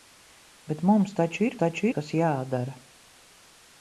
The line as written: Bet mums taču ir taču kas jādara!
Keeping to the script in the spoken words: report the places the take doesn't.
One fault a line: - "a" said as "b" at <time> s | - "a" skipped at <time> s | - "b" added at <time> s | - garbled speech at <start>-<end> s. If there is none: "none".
none